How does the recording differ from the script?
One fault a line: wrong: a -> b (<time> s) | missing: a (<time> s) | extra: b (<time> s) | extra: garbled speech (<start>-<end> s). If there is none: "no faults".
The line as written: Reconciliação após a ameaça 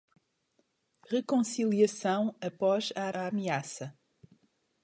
extra: a (3.1 s)